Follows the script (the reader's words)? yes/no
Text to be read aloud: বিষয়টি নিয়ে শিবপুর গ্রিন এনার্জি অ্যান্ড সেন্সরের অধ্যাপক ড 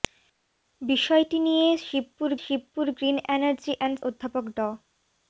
no